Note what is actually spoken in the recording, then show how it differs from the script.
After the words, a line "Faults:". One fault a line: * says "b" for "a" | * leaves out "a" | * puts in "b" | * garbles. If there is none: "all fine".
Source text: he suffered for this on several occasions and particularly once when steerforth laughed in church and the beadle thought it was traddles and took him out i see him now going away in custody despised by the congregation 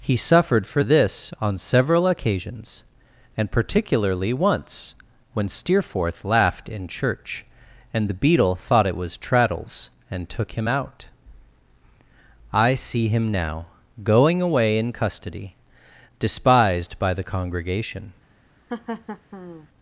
he suffered for this on several occasions and particularly once when steerforth laughed in church and the beadle thought it was traddles and took him out i see him now going away in custody despised by the congregation
Faults:
all fine